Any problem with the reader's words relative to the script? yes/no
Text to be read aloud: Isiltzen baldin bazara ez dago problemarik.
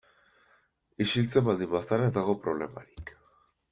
no